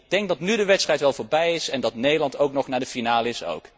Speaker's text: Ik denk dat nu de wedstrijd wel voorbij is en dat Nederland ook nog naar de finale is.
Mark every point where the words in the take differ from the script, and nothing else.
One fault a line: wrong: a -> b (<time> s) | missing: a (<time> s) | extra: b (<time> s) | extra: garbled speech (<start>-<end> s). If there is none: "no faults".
no faults